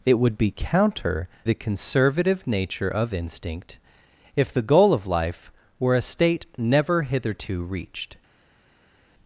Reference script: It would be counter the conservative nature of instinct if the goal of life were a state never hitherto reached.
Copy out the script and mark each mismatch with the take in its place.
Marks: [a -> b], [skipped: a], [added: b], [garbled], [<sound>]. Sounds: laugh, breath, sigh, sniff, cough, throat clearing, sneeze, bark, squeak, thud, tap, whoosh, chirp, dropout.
It would be counter the conservative nature of instinct if the goal of life were a state never hitherto reached.